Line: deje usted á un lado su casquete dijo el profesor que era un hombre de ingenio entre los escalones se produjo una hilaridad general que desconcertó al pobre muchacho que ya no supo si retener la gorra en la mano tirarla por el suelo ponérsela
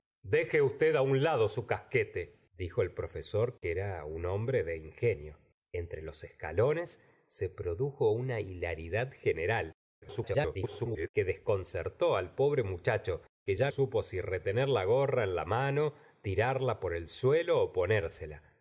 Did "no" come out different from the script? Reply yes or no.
yes